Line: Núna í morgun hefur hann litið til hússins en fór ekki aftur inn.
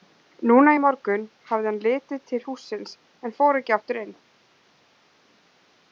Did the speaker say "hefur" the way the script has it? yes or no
no